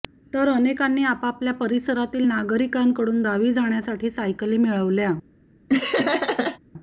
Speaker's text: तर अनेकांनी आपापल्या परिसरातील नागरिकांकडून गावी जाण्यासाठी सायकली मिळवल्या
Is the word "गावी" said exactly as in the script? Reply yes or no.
yes